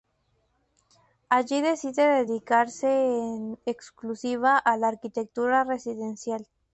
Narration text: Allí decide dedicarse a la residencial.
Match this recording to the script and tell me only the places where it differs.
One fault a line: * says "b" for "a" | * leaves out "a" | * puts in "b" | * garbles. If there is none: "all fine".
* puts in "en exclusiva"
* puts in "arquitectura"